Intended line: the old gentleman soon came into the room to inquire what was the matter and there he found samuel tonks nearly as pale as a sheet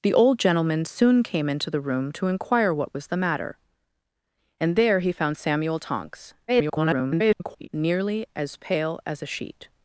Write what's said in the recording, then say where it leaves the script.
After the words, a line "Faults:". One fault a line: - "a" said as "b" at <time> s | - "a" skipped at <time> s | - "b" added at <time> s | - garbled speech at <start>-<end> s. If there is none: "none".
the old gentleman soon came into the room to inquire what was the matter and there he found samuel tonks [garbled] nearly as pale as a sheet
Faults:
- garbled speech at 6.5-7.7 s